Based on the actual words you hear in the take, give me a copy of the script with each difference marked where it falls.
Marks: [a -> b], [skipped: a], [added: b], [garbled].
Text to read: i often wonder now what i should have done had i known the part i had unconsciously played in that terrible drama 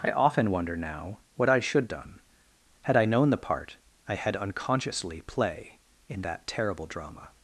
i often wonder now what i should [skipped: have] done had i known the part i had unconsciously [played -> play] in that terrible drama